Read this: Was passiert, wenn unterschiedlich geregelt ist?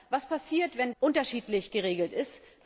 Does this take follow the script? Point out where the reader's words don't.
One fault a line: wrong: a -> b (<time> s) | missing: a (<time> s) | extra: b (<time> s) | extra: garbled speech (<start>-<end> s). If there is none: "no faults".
no faults